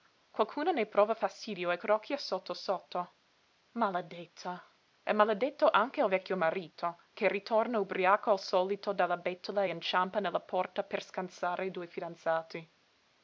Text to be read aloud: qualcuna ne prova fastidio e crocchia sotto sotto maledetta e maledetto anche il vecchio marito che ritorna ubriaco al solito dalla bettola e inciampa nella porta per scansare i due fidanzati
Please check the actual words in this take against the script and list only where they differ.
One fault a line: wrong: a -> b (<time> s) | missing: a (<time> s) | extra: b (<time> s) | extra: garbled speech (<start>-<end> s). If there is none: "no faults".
no faults